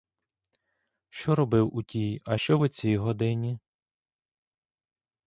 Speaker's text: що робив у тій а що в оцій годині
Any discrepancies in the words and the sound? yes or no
no